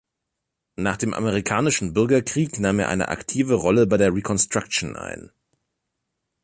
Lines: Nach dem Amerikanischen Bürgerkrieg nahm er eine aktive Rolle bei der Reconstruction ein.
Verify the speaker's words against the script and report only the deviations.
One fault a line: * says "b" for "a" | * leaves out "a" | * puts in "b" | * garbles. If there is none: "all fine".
all fine